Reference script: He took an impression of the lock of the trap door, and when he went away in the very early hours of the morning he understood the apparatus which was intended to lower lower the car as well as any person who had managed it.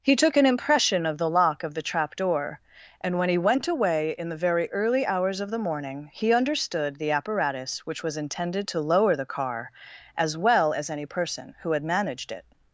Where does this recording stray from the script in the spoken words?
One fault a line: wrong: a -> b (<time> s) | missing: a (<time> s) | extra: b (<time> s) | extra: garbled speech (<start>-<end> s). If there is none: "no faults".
missing: lower (9.2 s)